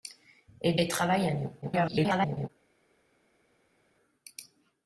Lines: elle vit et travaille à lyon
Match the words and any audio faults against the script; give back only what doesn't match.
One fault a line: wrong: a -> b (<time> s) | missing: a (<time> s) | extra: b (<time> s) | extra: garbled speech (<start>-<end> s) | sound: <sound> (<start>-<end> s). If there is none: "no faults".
missing: vit (0.8 s)
extra: garbled speech (1.6-2.5 s)